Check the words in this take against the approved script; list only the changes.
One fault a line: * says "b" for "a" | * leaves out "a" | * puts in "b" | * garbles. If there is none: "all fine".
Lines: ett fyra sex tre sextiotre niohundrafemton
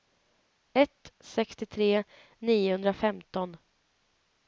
* leaves out "fyra sex tre"